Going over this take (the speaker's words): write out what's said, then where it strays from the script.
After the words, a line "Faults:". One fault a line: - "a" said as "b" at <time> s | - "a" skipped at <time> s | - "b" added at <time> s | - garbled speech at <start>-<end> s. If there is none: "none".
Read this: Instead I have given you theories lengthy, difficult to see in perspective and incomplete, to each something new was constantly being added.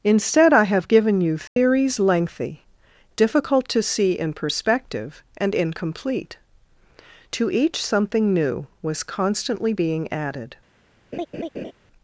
Instead I have given you theories lengthy, difficult to see in perspective and incomplete, to each something new was constantly being added.
Faults:
none